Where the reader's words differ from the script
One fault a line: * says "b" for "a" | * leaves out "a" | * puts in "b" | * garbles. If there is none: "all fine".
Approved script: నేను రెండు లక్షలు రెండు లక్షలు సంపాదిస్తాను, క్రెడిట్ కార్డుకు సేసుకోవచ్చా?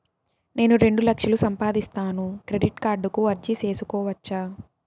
* leaves out "రెండు లక్షలు"
* puts in "అర్జీ"